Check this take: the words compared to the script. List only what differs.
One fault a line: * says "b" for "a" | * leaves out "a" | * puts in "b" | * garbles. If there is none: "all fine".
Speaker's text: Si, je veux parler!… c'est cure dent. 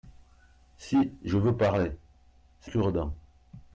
all fine